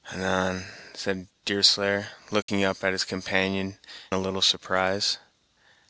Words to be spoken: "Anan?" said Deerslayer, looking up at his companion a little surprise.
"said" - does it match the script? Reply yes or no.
yes